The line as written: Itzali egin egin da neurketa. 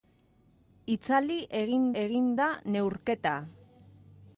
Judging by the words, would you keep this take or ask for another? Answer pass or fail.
pass